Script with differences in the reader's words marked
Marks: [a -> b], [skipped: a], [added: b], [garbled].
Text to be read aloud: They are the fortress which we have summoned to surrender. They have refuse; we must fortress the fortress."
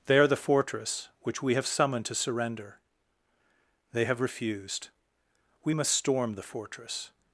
They are the fortress which we have summoned to surrender. They have [refuse; -> refused] we must [fortress -> storm] the fortress."